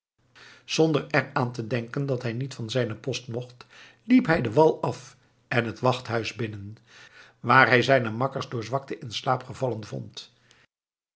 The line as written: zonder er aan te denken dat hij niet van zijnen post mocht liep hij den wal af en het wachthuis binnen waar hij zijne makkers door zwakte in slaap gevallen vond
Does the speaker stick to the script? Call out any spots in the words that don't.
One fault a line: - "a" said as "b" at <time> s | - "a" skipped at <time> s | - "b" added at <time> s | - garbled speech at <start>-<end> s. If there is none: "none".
none